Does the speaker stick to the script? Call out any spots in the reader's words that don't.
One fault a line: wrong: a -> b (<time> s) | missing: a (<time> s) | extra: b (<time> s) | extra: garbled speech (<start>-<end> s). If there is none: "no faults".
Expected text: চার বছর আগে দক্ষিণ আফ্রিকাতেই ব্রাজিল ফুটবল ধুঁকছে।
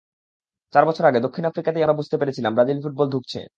extra: আমরা বুঝতে পেরেছিলাম (1.8 s)